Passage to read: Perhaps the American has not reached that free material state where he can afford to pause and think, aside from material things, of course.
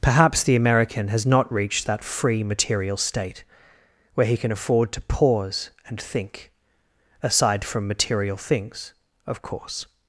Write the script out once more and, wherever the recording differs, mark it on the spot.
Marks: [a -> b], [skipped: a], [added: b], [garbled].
Perhaps the American has not reached that free material state where he can afford to pause and think, aside from material things, of course.